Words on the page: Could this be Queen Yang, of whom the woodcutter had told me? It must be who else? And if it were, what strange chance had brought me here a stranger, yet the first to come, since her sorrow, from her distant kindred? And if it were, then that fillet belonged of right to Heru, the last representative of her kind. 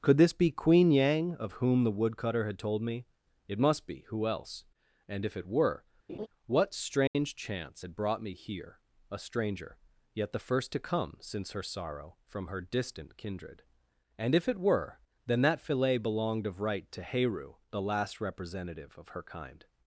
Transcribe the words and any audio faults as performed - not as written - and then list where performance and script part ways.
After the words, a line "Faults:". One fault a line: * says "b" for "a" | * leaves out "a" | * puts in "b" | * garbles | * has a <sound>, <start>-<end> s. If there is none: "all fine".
Could this be Queen Yang, of whom the woodcutter had told me? It must be who else? And if it were, what strange chance had brought me here a stranger, yet the first to come, since her sorrow, from her distant kindred? And if it were, then that fillet belonged of right to Heru, the last representative of her kind.
Faults:
* has a laugh, 6.1-6.3 s
* has a dropout, 7.1-7.1 s